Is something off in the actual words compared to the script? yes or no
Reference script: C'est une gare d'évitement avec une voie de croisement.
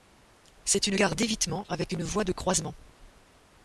no